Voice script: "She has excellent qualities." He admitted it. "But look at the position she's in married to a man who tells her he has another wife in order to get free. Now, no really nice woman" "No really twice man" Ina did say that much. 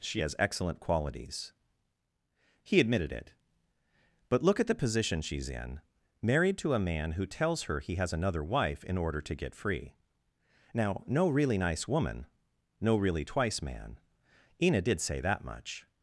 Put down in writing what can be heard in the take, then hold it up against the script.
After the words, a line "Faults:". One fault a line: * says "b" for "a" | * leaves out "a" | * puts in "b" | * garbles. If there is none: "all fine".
"She has excellent qualities." He admitted it. "But look at the position she's in married to a man who tells her he has another wife in order to get free. Now, no really nice woman" "No really twice man" Ina did say that much.
Faults:
all fine